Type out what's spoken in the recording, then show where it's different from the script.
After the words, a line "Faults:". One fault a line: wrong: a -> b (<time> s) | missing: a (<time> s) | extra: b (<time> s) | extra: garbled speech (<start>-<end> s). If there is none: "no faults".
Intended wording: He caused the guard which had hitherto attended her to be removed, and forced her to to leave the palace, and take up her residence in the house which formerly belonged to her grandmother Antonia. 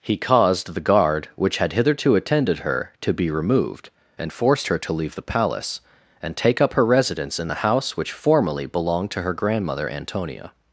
He caused the guard which had hitherto attended her to be removed, and forced her to leave the palace, and take up her residence in the house which formerly belonged to her grandmother Antonia.
Faults:
missing: to (4.9 s)